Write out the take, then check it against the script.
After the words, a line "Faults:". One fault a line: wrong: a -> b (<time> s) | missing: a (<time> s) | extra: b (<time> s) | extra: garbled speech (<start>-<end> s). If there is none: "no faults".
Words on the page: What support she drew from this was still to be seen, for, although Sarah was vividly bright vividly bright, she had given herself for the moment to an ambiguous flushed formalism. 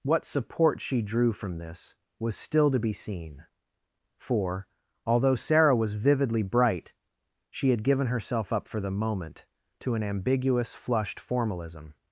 What support she drew from this was still to be seen, for, although Sarah was vividly bright, she had given herself up for the moment to an ambiguous flushed formalism.
Faults:
missing: vividly bright (6.9 s)
extra: up (8.5 s)